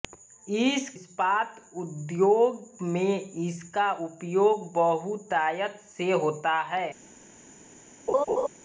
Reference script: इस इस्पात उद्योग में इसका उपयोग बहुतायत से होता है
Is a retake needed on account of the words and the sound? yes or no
yes